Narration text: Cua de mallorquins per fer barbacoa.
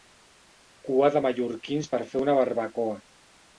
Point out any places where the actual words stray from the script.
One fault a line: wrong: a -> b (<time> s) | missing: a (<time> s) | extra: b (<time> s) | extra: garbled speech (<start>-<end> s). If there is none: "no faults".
extra: una (2.3 s)